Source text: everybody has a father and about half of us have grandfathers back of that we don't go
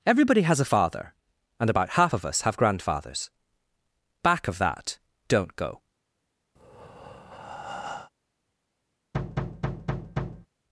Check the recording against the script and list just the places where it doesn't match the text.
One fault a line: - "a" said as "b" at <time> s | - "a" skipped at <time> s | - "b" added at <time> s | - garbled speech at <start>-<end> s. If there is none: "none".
- "we" skipped at 5.0 s